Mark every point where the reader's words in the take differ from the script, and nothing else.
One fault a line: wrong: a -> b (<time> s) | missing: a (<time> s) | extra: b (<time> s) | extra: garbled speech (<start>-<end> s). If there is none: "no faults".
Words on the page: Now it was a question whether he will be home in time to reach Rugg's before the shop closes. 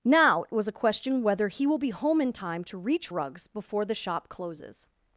no faults